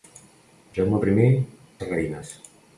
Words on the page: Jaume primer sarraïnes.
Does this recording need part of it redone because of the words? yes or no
no